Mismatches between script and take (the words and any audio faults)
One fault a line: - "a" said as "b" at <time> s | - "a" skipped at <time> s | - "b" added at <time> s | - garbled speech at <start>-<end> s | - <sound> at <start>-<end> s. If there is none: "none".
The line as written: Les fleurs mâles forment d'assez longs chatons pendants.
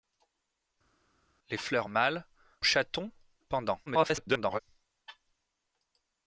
- "forment d'assez longs" skipped at 2.3 s
- garbled speech at 3.9-4.6 s